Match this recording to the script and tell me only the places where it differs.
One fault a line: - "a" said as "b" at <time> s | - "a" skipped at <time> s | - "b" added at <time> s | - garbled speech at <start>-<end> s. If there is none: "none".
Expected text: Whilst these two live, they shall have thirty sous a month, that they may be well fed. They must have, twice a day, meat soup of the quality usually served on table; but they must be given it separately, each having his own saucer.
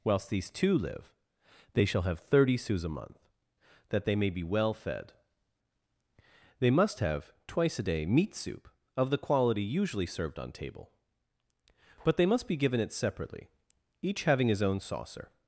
none